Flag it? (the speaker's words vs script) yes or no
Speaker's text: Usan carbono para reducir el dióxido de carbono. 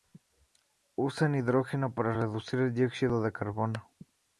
yes